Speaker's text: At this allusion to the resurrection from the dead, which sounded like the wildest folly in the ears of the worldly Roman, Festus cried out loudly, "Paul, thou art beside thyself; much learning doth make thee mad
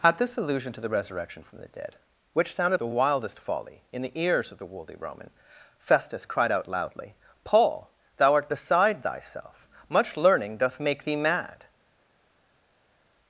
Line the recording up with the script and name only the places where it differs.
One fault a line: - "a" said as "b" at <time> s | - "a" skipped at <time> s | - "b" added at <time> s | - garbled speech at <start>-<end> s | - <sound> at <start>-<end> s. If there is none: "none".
- "like" skipped at 2.8 s